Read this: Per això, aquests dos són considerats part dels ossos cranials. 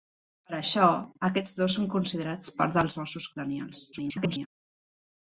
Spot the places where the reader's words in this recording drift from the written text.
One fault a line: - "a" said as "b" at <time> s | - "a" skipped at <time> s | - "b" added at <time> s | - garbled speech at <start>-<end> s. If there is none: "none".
- garbled speech at 3.9-4.5 s